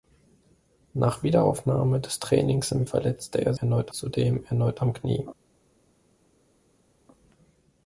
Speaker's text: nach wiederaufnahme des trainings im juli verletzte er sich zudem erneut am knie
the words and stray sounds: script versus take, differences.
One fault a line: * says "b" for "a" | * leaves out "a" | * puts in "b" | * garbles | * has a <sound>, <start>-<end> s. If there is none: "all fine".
* leaves out "juli"
* says "erneut" for "sich"